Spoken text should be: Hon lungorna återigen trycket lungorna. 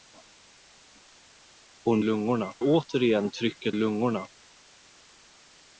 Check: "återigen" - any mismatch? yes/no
no